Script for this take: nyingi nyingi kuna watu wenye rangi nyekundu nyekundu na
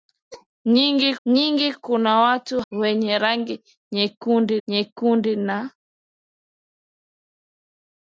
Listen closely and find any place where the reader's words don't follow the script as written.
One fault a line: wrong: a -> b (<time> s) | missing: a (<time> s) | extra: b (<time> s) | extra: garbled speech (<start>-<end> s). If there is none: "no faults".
no faults